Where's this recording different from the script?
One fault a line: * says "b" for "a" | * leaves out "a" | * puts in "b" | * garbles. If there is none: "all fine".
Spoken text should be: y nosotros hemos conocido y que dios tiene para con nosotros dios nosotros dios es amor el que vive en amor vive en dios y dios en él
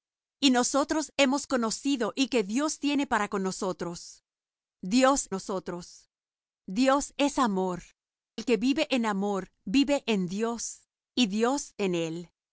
all fine